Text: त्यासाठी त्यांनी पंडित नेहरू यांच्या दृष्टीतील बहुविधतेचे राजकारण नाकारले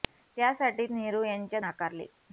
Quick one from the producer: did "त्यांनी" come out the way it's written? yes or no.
no